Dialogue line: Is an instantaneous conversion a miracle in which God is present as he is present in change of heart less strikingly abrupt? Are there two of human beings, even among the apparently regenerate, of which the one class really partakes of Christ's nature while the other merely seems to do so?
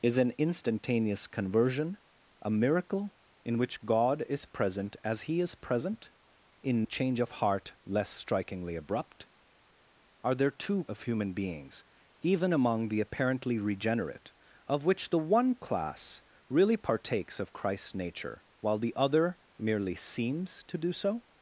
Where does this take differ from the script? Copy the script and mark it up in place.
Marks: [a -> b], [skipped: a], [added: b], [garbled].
Is an instantaneous conversion a miracle in which God is present as he is present in change of heart less strikingly abrupt? Are there two of human beings, even among the apparently regenerate, of which the one class really partakes of Christ's nature while the other merely seems to do so?